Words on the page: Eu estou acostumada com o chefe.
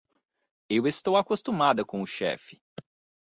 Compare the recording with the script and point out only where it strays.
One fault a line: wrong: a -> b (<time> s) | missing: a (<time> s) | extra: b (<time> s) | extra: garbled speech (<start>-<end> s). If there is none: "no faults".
no faults